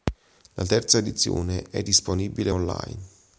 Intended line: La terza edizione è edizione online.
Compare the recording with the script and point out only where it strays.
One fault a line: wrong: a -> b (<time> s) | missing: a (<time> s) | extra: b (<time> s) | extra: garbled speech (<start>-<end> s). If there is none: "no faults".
wrong: edizione -> disponibile (1.8 s)